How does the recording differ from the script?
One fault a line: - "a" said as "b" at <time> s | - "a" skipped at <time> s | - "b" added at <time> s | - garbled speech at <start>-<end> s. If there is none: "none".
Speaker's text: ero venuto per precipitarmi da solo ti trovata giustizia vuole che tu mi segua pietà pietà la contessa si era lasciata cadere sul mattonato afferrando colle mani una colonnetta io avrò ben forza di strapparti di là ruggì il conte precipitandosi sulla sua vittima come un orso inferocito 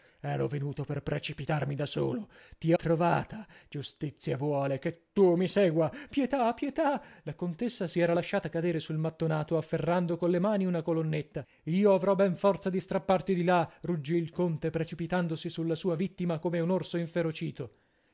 none